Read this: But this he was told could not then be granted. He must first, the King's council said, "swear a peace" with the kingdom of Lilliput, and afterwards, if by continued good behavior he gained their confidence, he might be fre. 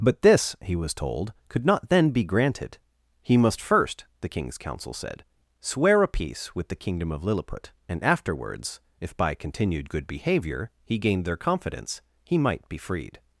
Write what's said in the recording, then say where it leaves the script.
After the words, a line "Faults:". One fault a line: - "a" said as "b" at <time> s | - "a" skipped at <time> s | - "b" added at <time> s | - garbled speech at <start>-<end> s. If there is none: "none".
But this he was told could not then be granted. He must first, the King's council said, "swear a peace" with the kingdom of Lilliput, and afterwards, if by continued good behavior he gained their confidence, he might be freed.
Faults:
- "fre" said as "freed" at 12.8 s